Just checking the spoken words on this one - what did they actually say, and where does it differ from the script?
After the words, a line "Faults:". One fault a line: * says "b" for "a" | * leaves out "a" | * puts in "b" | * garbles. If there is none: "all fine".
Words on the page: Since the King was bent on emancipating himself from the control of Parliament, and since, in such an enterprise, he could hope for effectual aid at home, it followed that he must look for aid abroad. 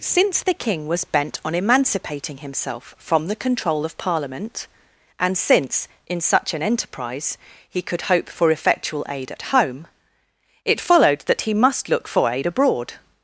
Since the King was bent on emancipating himself from the control of Parliament, and since, in such an enterprise, he could hope for effectual aid at home, it followed that he must look for aid abroad.
Faults:
all fine